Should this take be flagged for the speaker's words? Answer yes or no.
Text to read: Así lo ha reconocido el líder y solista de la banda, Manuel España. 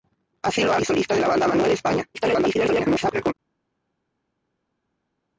yes